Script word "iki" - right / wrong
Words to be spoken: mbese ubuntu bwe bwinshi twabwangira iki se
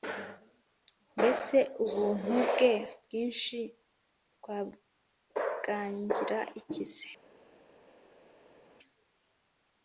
right